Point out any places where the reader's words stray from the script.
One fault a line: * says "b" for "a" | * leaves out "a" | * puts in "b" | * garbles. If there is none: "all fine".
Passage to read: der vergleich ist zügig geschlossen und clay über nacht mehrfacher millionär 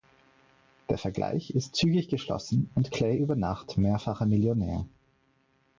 all fine